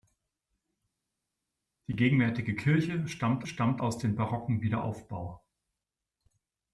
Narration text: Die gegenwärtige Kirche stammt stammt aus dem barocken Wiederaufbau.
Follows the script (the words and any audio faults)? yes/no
yes